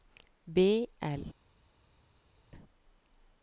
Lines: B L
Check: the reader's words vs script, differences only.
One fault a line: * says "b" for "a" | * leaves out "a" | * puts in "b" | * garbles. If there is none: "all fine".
all fine